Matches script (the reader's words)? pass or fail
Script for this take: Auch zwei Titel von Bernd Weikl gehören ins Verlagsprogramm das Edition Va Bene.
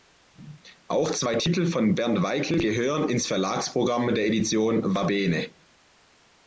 fail